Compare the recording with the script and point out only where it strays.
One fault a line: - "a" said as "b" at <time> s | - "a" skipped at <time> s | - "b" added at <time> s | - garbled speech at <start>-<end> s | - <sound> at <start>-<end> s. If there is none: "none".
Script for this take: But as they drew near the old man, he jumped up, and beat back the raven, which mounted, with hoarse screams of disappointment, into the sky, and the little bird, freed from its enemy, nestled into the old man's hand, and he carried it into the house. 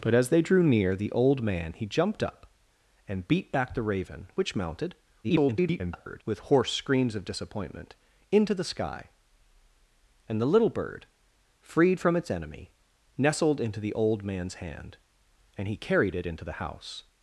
- garbled speech at 5.2-6.2 s